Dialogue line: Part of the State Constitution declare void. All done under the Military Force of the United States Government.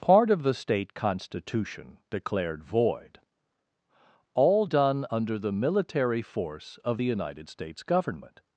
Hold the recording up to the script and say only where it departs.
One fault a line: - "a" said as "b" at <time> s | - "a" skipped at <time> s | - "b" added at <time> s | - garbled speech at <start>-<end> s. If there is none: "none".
- "declare" said as "declared" at 2.1 s